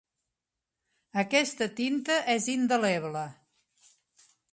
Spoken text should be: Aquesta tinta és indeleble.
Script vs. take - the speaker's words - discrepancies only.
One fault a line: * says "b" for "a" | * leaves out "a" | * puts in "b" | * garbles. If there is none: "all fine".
all fine